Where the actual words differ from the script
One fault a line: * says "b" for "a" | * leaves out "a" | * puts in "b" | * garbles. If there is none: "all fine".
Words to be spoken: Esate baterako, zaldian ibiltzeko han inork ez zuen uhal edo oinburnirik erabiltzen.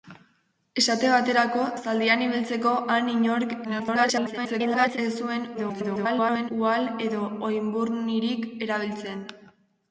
* garbles
* garbles